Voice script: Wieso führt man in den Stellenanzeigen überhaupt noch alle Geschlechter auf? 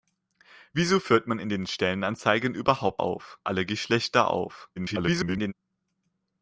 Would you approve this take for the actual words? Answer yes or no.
no